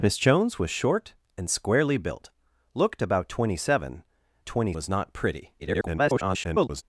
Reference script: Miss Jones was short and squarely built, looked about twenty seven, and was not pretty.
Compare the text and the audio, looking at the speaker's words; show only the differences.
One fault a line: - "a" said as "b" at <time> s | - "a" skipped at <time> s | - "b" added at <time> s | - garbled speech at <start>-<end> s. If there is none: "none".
- "and" said as "twenty" at 4.5 s
- garbled speech at 5.6-6.8 s